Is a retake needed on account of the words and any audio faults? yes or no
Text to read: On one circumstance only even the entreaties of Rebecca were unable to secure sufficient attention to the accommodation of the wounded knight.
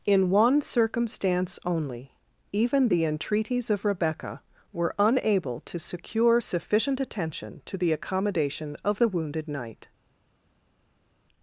yes